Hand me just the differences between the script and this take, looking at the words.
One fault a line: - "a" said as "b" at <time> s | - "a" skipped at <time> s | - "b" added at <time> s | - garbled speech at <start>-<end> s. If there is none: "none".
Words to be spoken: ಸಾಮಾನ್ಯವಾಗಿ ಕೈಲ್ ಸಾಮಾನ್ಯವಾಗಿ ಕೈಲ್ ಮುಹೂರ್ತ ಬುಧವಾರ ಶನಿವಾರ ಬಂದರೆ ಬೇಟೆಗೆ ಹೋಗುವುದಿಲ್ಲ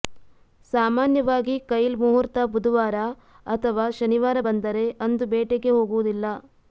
- "ಸಾಮಾನ್ಯವಾಗಿ ಕೈಲ್" skipped at 2.0 s
- "ಅಥವಾ" added at 3.5 s
- "ಅಂದು" added at 5.1 s